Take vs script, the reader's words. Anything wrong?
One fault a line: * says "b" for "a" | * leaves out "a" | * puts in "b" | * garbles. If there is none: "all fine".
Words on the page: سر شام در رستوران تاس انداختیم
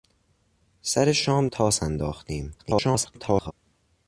* leaves out "در رستوران"
* garbles